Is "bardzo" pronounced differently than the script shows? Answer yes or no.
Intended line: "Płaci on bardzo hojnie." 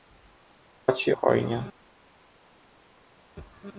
yes